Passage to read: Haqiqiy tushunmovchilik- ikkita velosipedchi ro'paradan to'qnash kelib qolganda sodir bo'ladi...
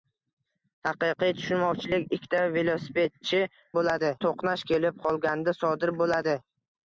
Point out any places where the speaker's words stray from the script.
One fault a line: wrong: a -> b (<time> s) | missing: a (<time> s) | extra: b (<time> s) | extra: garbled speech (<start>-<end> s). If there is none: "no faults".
wrong: ro'paradan -> bo'ladi (3.8 s)